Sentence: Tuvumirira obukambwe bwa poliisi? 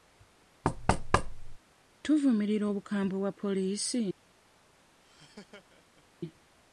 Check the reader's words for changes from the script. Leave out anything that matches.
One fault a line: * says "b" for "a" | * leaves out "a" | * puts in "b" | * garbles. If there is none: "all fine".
all fine